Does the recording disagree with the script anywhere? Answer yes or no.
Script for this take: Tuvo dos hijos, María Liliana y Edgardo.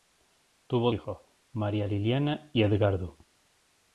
yes